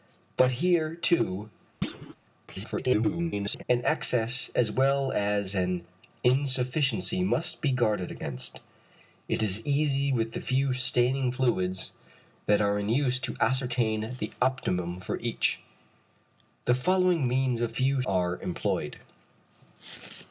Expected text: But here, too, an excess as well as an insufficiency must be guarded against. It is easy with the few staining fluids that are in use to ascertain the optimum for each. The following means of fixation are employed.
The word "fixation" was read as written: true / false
false